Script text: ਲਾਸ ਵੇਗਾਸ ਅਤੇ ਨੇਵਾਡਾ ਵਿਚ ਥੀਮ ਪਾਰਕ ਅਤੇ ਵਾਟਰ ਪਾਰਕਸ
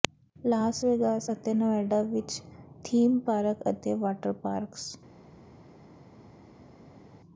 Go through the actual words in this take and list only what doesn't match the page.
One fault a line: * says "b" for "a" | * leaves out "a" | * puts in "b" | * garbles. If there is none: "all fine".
all fine